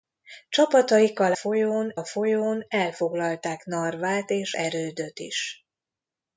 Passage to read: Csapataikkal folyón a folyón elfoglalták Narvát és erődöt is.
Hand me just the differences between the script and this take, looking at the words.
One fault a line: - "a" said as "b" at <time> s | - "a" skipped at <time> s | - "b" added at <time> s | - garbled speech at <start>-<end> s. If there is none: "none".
none